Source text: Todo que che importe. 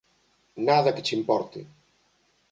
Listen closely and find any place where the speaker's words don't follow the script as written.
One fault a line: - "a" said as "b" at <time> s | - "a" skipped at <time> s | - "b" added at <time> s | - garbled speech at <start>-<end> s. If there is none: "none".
- "Todo" said as "Nada" at 0.7 s